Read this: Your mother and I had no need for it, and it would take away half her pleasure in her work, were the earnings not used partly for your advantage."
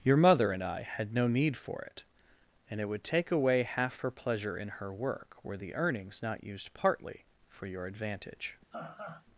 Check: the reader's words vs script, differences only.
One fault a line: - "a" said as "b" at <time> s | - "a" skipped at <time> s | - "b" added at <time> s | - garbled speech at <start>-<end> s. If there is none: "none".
none